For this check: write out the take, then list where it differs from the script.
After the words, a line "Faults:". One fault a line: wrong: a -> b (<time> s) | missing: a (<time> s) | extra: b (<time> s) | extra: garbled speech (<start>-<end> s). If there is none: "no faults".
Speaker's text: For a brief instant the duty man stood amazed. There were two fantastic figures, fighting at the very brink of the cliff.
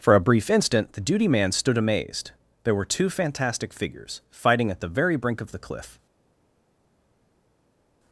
For a brief instant the duty man stood amazed. There were two fantastic figures, fighting at the very brink of the cliff.
Faults:
no faults